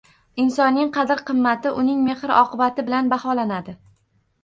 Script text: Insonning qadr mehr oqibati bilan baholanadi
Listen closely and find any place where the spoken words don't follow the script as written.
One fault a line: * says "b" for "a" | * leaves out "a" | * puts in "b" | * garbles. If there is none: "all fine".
* puts in "qimmati uning"